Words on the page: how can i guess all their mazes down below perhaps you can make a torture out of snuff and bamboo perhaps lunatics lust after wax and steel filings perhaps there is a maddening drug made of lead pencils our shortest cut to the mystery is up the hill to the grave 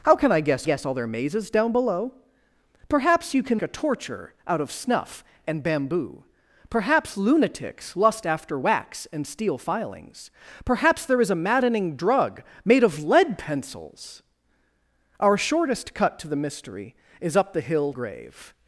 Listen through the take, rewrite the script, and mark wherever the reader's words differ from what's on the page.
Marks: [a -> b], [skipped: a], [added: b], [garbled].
how can i guess [added: guess] all their mazes down below perhaps you can [skipped: make] a torture out of snuff and bamboo perhaps lunatics lust after wax and steel filings perhaps there is a maddening drug made of lead pencils our shortest cut to the mystery is up the hill [skipped: to the] grave